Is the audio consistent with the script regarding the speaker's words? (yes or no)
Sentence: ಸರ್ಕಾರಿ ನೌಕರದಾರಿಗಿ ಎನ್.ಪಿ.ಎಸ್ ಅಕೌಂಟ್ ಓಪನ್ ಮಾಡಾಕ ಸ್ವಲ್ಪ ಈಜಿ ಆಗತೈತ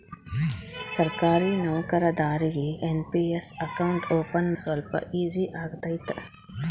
no